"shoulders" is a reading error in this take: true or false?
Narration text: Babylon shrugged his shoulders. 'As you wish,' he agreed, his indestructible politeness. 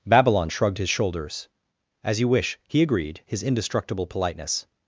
false